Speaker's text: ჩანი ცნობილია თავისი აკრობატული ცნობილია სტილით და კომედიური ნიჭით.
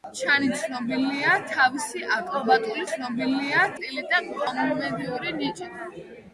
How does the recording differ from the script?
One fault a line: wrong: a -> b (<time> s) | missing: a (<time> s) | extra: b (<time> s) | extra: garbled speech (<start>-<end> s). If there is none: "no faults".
no faults